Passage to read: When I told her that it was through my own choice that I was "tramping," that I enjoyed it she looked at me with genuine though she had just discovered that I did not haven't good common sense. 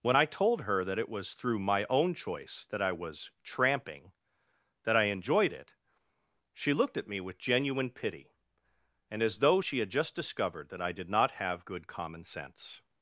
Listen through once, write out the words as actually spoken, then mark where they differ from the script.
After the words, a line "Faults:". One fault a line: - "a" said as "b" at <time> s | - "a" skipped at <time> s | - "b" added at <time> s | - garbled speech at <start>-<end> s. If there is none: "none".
When I told her that it was through my own choice that I was "tramping," that I enjoyed it she looked at me with genuine pity, and as though she had just discovered that I did not have good common sense.
Faults:
- "pity and as" added at 7.9 s
- "haven't" said as "have" at 11.3 s